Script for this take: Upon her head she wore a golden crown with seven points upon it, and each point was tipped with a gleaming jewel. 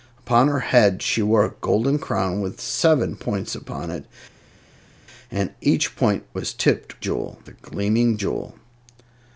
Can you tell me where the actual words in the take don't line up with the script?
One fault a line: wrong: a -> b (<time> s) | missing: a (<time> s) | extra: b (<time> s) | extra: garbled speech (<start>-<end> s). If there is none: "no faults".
wrong: with -> jewel (7.0 s)